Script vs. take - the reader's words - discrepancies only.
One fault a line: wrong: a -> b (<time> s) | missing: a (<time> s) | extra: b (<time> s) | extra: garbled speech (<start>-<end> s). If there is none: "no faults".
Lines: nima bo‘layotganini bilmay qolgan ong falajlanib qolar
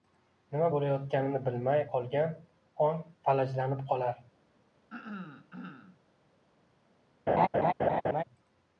no faults